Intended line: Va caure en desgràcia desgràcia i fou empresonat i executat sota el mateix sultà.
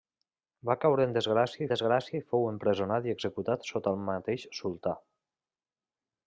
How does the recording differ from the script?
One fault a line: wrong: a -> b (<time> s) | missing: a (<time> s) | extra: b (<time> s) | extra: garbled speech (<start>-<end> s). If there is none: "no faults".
no faults